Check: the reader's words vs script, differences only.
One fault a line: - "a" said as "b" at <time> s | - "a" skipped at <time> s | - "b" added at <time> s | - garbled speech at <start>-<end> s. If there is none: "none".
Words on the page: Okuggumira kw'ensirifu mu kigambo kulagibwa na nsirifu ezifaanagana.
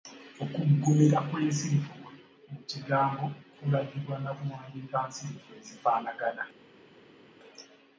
- "kuwandiika" added at 4.3 s